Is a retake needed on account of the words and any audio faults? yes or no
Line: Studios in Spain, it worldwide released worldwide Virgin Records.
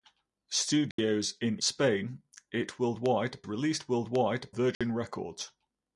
yes